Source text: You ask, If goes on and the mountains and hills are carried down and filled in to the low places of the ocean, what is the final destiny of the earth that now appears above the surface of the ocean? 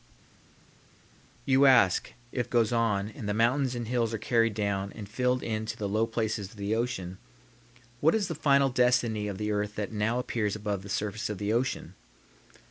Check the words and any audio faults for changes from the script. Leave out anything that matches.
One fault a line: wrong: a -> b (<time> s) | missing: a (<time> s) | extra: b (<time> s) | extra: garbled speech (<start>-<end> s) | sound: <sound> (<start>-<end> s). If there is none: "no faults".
no faults